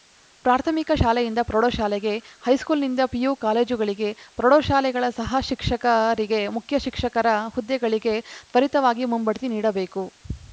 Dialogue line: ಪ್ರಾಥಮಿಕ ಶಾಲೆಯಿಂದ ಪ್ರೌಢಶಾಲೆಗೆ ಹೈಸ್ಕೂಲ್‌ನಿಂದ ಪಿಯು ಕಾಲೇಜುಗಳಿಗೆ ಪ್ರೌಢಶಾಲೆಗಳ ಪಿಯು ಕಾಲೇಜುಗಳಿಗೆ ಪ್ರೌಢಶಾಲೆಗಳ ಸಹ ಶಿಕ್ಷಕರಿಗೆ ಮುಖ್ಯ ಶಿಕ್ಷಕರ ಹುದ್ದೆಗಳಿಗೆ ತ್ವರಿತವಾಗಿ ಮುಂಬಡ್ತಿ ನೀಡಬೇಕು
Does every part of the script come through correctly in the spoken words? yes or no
no